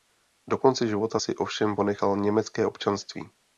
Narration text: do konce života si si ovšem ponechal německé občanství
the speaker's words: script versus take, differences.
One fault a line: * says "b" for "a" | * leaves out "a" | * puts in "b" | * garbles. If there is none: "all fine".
* leaves out "si"